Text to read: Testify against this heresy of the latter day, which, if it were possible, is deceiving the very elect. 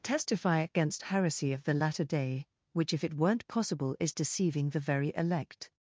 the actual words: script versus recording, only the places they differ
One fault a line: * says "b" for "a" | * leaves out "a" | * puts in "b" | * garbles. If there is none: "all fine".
* leaves out "this"
* says "weren't" for "were"